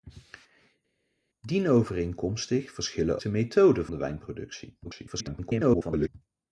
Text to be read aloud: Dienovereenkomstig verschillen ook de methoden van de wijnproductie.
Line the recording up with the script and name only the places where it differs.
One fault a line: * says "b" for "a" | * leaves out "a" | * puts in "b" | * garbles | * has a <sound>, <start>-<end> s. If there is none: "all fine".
* leaves out "ook"
* leaves out "van"
* garbles